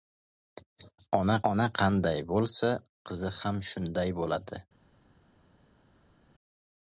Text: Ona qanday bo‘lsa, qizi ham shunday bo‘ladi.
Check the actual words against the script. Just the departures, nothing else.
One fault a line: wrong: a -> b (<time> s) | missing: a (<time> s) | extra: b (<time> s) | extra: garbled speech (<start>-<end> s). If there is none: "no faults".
extra: ona (1.5 s)